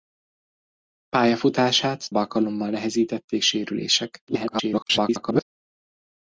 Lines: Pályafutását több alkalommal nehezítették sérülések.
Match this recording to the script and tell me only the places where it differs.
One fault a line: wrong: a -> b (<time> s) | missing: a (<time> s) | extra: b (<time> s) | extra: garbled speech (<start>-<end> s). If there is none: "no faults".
missing: több (2.1 s)
extra: garbled speech (4.3-5.4 s)